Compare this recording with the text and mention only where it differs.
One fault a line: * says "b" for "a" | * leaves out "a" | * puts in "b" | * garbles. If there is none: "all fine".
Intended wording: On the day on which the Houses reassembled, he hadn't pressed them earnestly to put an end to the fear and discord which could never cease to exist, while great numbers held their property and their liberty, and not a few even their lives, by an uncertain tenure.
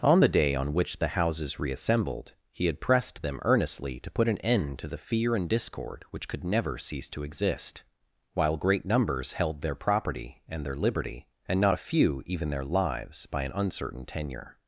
* says "had" for "hadn't"